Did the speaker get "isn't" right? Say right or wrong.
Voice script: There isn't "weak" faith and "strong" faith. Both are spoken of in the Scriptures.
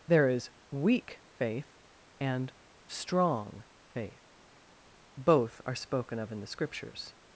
wrong